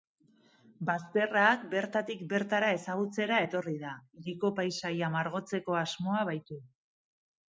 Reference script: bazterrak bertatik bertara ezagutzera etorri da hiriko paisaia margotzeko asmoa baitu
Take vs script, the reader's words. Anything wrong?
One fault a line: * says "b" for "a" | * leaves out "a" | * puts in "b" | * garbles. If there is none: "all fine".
all fine